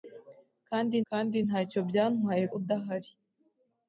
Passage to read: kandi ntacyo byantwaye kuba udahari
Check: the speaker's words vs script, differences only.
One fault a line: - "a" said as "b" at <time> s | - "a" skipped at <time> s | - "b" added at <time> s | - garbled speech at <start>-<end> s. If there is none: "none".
- "kandi" added at 1.1 s
- "kuba" skipped at 2.4 s